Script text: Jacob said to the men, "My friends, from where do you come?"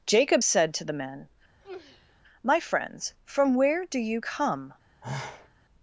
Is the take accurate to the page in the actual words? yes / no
yes